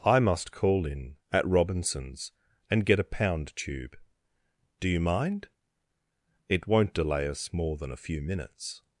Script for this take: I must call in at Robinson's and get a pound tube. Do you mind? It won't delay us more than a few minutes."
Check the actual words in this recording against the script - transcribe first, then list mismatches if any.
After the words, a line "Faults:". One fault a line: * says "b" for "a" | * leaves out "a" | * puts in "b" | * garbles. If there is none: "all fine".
I must call in at Robinson's and get a pound tube. Do you mind? It won't delay us more than a few minutes."
Faults:
all fine